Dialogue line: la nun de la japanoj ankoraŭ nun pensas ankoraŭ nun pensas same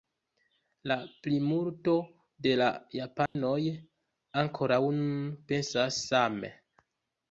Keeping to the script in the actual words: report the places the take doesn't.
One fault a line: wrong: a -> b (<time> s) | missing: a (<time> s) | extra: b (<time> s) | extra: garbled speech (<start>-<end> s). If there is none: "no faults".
wrong: nun -> plimulto (1.3 s)
missing: ankoraŭ nun pensas (6.0 s)